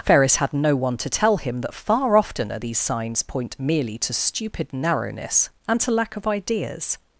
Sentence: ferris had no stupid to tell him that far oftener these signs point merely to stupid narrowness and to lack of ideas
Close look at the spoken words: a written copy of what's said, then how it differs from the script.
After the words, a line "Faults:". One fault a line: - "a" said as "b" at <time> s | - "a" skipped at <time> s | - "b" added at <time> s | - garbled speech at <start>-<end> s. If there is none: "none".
ferris had no one to tell him that far oftener these signs point merely to stupid narrowness and to lack of ideas
Faults:
- "stupid" said as "one" at 0.8 s